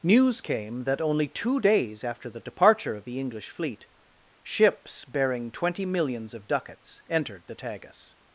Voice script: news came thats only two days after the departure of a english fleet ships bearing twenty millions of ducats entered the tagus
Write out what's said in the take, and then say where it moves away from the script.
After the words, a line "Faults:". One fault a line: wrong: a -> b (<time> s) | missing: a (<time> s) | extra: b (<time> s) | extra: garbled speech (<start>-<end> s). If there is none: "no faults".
news came that only two days after the departure of the english fleet ships bearing twenty millions of ducats entered the tagus
Faults:
wrong: thats -> that (0.9 s)
wrong: a -> the (3.0 s)